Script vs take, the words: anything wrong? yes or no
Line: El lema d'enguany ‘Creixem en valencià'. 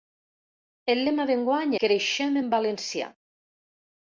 no